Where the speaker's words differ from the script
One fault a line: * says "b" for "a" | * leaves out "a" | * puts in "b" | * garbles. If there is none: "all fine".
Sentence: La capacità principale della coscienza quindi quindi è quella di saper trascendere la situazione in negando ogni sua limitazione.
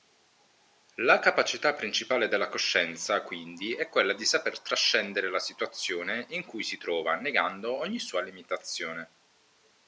* leaves out "quindi"
* puts in "cui si trova"